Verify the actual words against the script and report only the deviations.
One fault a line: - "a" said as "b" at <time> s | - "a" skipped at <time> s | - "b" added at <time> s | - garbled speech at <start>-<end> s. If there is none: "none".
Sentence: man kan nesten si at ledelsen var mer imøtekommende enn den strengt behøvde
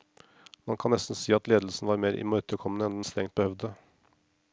none